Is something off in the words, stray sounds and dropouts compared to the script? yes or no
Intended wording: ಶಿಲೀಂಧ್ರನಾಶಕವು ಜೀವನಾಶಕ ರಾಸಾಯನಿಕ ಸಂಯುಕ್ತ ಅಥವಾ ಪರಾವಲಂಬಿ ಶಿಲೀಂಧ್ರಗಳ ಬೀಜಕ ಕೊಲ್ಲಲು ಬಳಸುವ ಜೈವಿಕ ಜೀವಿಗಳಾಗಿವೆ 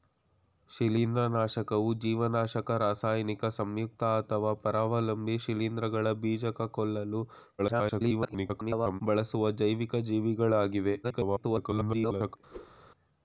yes